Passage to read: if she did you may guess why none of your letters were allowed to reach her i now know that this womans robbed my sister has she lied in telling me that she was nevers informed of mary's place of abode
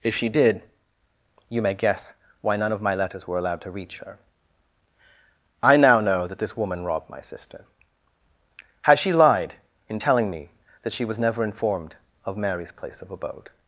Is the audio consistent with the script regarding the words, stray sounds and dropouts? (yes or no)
no